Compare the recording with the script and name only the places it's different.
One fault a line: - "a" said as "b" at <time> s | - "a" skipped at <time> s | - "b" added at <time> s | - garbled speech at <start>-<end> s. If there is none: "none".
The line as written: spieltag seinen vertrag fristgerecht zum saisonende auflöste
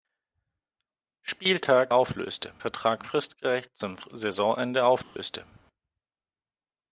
- "seinen" said as "auflöste" at 1.9 s